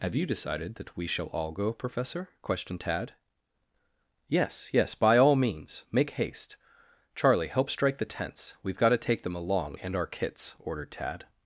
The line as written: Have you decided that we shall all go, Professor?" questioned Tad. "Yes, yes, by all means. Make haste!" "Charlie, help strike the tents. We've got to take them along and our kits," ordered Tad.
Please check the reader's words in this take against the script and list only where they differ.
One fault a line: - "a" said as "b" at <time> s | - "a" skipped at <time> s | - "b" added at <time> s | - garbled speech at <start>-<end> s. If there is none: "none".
none